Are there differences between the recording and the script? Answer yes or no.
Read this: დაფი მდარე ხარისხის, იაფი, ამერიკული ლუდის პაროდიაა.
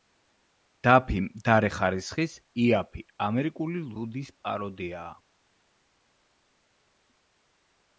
no